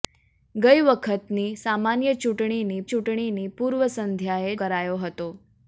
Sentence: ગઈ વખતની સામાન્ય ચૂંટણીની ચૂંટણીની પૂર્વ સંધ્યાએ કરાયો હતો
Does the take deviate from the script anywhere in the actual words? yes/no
no